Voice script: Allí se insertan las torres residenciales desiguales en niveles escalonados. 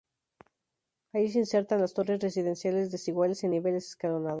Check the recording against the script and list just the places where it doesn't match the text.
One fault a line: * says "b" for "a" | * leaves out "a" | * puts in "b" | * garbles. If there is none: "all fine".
all fine